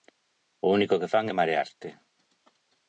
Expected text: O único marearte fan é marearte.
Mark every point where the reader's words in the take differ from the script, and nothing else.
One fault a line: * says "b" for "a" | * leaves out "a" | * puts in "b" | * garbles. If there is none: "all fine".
* says "que" for "marearte"